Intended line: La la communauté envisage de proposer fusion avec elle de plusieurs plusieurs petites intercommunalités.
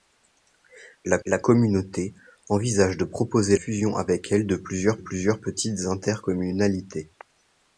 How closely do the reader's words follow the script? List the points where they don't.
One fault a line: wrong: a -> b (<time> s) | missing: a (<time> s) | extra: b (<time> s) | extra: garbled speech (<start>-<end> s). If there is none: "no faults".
no faults